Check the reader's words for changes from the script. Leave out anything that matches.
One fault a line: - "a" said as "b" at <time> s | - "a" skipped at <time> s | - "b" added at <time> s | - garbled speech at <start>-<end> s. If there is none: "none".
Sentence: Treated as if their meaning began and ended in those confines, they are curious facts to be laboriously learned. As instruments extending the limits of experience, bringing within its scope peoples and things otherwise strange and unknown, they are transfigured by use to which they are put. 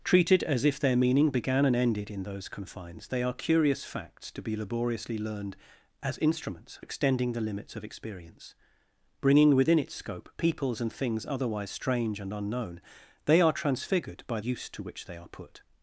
none